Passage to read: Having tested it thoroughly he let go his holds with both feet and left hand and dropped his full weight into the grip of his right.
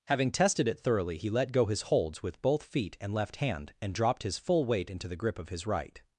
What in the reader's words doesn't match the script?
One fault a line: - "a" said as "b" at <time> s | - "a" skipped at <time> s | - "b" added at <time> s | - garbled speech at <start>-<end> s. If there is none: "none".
none